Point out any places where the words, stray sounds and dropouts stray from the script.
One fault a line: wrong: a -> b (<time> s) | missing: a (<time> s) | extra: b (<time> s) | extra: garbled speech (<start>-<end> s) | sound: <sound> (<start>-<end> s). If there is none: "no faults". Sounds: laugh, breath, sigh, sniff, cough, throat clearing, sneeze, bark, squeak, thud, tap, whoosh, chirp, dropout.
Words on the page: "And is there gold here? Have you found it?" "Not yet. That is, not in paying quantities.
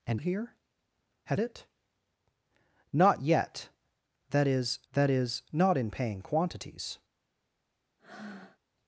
missing: is there gold (0.2 s)
missing: you found (1.4 s)
extra: that is (4.9 s)
sound: breath (8.0-8.6 s)